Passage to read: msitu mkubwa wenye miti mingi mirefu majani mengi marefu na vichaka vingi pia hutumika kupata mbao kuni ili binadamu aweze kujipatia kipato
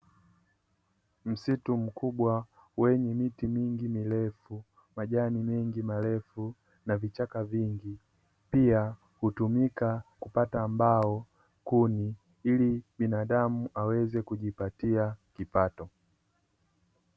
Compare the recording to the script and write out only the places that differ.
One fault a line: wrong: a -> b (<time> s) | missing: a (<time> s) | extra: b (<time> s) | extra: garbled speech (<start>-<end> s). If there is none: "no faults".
no faults